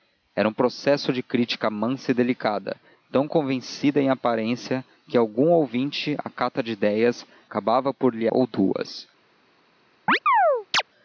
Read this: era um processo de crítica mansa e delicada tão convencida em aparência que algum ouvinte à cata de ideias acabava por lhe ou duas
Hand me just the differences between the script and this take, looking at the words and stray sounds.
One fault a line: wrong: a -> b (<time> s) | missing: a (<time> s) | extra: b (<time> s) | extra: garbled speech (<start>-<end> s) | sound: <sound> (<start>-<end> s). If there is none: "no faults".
sound: chirp (10.1-10.8 s)